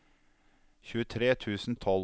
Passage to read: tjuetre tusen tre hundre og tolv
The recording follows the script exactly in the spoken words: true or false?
false